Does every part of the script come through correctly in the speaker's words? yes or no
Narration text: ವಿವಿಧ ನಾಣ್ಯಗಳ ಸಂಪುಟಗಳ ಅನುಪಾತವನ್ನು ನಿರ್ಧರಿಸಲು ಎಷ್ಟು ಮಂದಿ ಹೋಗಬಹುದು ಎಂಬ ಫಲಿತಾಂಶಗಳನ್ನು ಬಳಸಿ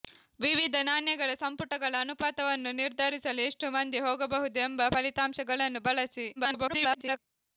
no